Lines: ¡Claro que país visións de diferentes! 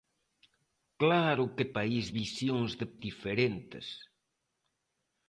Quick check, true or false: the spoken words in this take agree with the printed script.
true